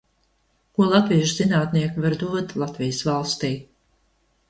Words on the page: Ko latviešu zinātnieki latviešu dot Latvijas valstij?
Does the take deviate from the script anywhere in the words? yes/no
yes